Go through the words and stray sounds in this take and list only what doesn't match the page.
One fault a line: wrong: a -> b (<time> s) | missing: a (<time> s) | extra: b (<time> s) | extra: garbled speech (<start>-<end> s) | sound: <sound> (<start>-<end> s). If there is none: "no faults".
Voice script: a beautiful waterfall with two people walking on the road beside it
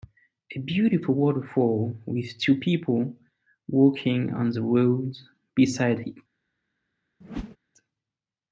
sound: whoosh (7.2-7.6 s)